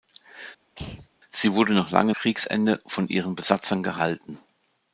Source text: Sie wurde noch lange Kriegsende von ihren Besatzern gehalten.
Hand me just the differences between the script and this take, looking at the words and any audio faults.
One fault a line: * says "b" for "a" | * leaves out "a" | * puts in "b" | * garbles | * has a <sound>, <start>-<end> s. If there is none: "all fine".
* has a throat clearing, 0.7-1.1 s